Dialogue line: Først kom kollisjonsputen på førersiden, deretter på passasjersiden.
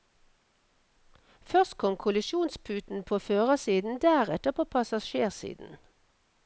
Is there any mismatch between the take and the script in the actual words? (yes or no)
no